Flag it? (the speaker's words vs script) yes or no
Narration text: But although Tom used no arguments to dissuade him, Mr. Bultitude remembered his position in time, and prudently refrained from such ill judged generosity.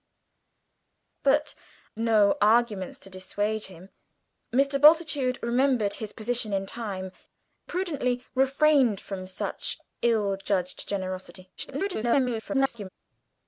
yes